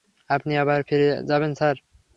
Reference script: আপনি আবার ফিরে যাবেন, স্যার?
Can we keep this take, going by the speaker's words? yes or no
yes